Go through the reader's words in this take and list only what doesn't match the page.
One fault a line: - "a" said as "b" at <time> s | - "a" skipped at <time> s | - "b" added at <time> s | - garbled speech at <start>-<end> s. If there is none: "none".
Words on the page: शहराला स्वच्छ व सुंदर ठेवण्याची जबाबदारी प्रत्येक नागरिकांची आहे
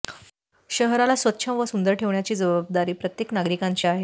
none